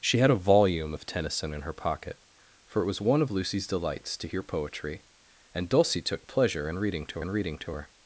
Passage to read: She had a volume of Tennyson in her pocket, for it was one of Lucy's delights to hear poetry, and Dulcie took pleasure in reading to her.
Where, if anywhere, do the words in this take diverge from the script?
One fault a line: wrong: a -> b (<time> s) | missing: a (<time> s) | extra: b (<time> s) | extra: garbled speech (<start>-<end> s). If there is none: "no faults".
extra: in reading to (7.2 s)